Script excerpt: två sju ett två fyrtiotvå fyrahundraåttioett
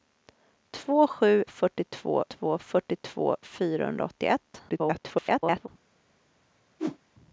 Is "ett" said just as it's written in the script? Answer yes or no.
no